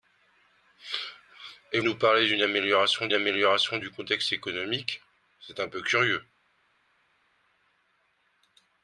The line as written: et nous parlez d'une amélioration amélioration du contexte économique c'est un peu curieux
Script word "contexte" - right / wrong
right